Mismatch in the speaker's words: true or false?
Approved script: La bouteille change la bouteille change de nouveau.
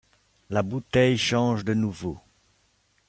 true